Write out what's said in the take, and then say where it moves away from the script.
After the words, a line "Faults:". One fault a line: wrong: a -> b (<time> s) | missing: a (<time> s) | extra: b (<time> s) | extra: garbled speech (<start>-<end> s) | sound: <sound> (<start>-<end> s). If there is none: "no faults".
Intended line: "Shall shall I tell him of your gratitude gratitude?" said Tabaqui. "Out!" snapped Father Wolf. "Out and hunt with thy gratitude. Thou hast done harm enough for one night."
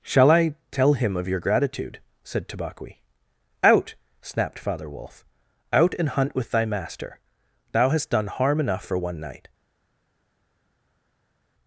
"Shall I tell him of your gratitude?" said Tabaqui. "Out!" snapped Father Wolf. "Out and hunt with thy master. Thou hast done harm enough for one night."
Faults:
missing: shall (0.3 s)
missing: gratitude (2.0 s)
wrong: gratitude -> master (6.7 s)